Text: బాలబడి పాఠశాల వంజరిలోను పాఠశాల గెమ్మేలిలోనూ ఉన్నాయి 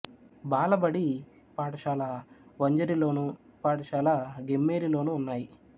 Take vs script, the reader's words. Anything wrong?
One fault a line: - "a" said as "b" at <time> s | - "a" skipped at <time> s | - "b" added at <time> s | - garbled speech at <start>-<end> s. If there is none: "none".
none